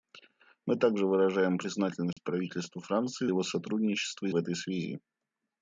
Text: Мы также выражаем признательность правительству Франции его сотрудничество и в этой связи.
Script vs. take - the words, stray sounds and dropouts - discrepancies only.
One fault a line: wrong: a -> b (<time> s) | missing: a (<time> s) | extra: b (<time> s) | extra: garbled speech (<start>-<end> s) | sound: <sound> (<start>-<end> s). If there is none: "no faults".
sound: dropout (2.1-2.2 s)